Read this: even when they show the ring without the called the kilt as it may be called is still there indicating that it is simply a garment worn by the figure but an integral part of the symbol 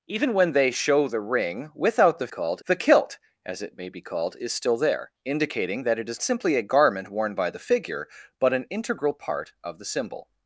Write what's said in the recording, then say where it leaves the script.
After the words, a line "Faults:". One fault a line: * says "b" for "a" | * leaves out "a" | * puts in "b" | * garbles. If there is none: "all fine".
even when they show the ring without the called the kilt as it may be called is still there indicating that it is simply a garment worn by the figure but an integral part of the symbol
Faults:
all fine